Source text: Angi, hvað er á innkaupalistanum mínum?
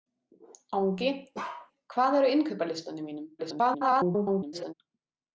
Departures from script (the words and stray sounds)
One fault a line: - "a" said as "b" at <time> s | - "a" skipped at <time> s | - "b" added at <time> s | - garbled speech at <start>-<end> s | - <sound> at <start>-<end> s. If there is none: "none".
- bark at 1.3-1.7 s
- garbled speech at 3.4-4.7 s